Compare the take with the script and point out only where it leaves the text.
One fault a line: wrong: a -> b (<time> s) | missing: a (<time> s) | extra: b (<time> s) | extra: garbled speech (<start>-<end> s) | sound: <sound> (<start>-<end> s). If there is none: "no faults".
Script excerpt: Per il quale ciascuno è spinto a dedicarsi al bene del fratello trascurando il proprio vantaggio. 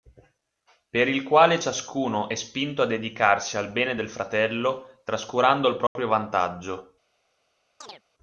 sound: dropout (5.9-6.0 s)
sound: chirp (7.8-8.0 s)